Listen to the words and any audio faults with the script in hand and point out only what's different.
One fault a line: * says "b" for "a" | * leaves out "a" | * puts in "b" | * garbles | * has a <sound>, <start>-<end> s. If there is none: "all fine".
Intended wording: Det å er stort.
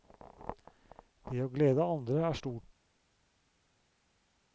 * puts in "glede andre"